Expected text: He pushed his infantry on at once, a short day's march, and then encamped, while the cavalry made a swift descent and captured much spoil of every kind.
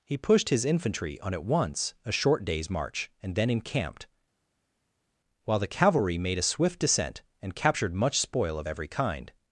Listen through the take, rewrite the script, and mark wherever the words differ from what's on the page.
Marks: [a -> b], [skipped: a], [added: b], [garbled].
He pushed his infantry on at once, a short day's march, and then encamped, while the cavalry made a swift descent and captured much spoil of every kind.